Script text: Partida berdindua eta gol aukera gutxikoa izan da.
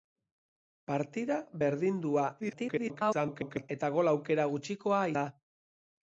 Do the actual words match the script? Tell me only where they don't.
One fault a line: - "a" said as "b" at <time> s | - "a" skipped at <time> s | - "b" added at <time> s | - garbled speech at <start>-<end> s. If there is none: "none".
- garbled speech at 2.4-3.7 s
- "izan" skipped at 5.0 s